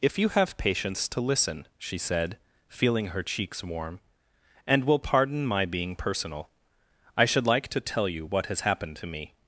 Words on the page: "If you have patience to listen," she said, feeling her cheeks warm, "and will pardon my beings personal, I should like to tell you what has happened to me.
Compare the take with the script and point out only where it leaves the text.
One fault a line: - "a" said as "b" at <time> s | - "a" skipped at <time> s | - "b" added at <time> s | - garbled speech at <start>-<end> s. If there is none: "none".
- "beings" said as "being" at 5.7 s